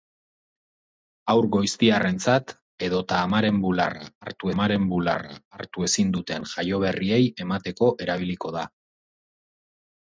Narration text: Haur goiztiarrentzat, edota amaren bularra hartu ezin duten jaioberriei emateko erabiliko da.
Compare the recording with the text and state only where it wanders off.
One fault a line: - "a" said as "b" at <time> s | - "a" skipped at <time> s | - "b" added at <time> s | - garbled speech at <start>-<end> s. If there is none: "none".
- "amaren bularra hartu" added at 4.5 s